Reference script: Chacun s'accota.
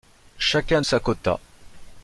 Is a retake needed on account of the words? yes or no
no